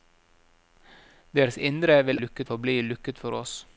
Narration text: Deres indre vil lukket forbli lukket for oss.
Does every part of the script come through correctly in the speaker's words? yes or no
yes